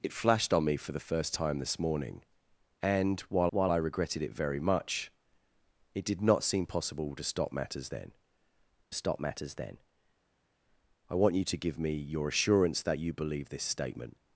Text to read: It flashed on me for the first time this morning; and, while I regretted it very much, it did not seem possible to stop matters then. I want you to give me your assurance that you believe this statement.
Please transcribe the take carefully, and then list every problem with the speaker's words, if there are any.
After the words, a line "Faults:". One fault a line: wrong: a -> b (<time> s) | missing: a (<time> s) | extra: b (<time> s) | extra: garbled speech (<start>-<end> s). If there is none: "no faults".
It flashed on me for the first time this morning; and, while while I regretted it very much, it did not seem possible to stop matters then stop matters then. I want you to give me your assurance that you believe this statement.
Faults:
extra: while (3.5 s)
extra: stop matters then (8.9 s)